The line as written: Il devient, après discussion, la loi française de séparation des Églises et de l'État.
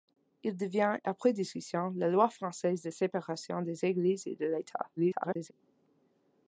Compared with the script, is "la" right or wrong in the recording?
right